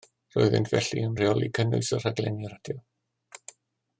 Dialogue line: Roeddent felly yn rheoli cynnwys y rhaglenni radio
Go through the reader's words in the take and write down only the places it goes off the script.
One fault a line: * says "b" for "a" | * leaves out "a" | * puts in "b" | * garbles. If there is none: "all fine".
all fine